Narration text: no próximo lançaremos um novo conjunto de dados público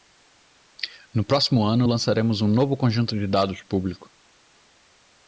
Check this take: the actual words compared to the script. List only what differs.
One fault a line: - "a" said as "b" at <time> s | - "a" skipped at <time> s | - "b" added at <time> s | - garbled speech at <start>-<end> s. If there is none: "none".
- "ano" added at 1.6 s